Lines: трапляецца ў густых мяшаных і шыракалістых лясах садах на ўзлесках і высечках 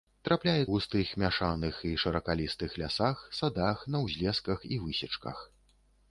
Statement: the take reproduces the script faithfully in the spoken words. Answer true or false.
false